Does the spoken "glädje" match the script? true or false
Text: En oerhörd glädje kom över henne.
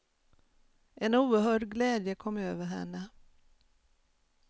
true